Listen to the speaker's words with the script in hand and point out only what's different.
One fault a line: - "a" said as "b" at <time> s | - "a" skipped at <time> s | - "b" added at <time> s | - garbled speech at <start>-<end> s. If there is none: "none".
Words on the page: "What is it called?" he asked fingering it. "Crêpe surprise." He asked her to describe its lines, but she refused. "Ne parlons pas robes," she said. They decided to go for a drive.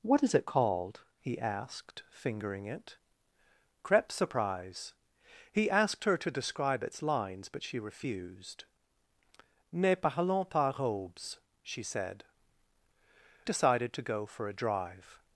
- "They" skipped at 12.2 s